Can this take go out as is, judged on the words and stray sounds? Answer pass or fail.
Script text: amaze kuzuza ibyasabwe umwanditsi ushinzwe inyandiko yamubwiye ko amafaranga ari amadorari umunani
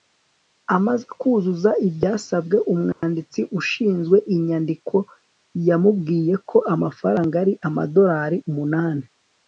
fail